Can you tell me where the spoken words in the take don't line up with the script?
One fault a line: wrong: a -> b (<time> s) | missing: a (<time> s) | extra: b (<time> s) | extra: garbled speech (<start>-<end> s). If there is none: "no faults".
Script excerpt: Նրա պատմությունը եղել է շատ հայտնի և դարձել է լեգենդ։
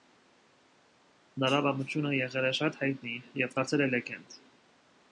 no faults